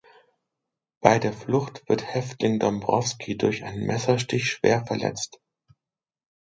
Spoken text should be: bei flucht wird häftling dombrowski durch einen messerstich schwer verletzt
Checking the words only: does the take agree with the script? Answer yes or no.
no